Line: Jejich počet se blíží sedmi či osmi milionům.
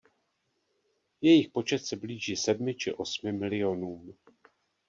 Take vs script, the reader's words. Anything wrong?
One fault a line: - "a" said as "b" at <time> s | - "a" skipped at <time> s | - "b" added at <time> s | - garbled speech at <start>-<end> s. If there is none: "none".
none